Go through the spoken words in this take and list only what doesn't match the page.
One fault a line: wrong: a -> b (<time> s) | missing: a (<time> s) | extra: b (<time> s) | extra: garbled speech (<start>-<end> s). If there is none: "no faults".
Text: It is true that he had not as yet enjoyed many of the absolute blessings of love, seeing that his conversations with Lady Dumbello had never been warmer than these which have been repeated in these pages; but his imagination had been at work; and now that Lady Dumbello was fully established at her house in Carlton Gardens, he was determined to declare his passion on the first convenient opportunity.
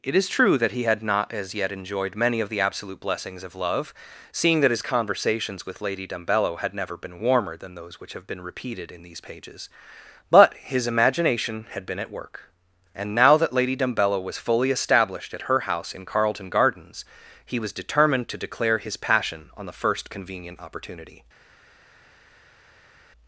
wrong: these -> those (7.8 s)